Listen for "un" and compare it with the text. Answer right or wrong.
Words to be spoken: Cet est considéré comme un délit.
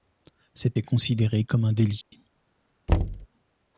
right